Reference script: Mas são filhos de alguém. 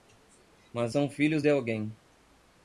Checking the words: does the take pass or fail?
pass